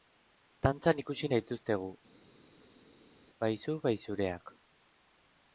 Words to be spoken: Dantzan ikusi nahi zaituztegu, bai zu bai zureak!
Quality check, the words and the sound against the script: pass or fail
fail